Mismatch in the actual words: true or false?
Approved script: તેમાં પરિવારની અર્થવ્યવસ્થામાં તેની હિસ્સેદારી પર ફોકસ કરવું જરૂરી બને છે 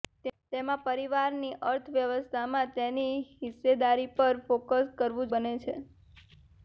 true